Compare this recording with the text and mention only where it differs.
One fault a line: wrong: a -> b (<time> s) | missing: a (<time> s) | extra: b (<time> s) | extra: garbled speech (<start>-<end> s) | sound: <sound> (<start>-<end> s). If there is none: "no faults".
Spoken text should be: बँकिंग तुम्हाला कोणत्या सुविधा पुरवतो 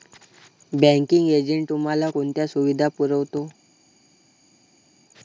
extra: एजंट (1.3 s)